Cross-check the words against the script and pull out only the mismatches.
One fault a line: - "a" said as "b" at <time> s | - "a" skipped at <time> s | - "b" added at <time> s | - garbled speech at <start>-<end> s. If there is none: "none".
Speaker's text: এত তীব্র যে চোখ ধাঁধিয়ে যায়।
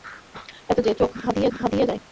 - "তীব্র" skipped at 0.8 s
- "ধাঁধিয়ে" added at 1.5 s